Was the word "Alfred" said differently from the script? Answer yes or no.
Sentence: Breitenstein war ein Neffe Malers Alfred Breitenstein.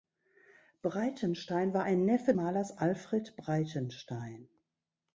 no